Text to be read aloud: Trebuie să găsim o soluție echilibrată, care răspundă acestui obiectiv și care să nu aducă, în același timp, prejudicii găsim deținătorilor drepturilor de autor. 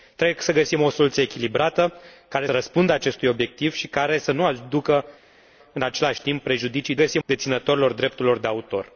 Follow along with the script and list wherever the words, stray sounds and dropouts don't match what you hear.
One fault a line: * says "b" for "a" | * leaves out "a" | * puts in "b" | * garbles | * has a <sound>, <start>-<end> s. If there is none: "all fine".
all fine